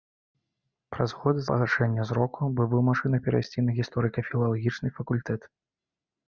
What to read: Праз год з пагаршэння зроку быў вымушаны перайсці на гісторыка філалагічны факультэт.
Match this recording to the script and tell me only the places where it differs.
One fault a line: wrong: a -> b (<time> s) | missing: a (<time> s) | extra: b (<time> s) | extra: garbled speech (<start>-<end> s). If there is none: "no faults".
no faults